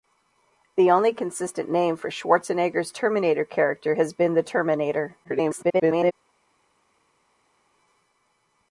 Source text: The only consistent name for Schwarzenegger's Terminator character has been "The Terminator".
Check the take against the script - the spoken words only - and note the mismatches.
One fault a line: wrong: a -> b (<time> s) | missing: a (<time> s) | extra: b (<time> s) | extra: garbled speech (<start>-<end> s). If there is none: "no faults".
extra: garbled speech (5.2-6.1 s)